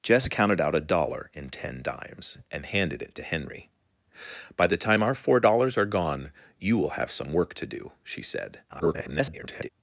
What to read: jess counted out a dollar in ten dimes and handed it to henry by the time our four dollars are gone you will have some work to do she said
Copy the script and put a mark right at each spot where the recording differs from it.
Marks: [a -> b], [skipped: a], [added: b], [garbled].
jess counted out a dollar in ten dimes and handed it to henry by the time our four dollars are gone you will have some work to do she said [garbled]